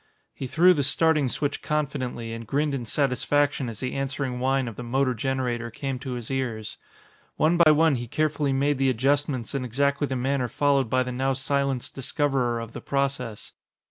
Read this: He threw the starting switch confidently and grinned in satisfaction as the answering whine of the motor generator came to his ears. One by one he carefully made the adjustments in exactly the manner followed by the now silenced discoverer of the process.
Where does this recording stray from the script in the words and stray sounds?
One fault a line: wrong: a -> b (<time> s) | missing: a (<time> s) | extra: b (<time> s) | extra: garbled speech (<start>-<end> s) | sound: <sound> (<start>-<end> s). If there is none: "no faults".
sound: dropout (7.6-7.7 s)